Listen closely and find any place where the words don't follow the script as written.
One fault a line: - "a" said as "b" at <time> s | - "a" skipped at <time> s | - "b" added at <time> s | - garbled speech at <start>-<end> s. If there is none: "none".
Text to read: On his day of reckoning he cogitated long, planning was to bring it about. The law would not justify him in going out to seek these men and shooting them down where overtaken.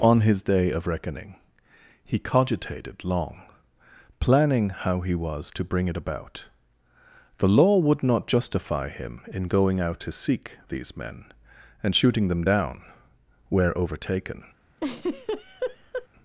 - "how he" added at 4.7 s